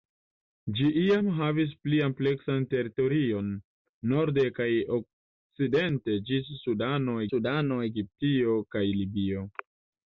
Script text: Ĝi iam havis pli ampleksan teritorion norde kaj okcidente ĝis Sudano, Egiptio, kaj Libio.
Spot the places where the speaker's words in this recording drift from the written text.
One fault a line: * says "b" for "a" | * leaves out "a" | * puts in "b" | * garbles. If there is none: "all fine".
* puts in "Sudano"